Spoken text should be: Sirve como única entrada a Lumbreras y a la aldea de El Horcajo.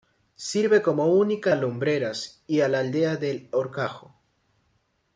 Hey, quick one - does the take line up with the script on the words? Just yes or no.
no